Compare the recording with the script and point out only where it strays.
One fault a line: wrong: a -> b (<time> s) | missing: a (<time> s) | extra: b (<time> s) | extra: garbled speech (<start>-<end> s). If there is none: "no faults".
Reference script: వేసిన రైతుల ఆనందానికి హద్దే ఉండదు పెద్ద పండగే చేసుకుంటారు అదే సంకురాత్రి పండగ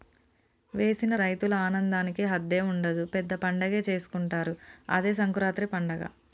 no faults